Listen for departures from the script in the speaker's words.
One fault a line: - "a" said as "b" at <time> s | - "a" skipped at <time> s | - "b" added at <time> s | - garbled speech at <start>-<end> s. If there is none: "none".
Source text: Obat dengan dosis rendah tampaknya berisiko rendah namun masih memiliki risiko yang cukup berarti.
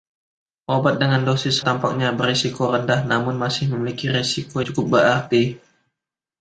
- "rendah" skipped at 1.6 s
- "yang" skipped at 4.6 s